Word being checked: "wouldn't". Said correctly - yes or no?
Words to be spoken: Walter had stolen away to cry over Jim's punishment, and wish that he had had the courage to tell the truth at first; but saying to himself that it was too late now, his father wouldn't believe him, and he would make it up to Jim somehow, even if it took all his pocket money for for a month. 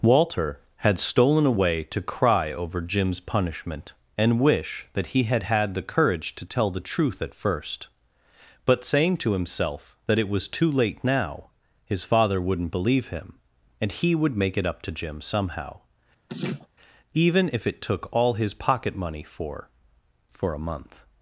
yes